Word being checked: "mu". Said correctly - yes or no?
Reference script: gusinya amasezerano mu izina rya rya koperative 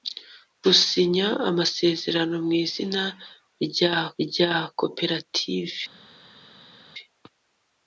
yes